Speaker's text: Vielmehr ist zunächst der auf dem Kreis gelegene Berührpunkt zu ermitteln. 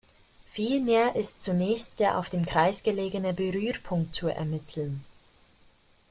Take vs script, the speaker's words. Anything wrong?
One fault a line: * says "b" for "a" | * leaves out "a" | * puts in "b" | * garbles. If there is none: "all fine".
all fine